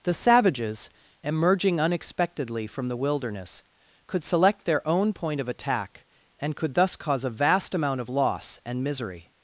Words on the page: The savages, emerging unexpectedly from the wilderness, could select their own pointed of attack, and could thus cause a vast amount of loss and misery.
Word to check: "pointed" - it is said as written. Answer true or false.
false